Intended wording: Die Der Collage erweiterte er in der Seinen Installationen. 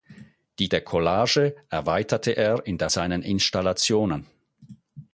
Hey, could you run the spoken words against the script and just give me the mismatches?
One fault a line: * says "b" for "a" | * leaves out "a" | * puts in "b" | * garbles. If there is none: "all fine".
all fine